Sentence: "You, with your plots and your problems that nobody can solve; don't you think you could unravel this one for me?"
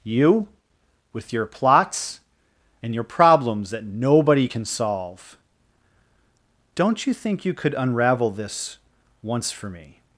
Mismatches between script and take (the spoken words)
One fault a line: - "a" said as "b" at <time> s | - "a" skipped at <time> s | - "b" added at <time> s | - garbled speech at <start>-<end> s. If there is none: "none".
- "one" said as "once" at 9.2 s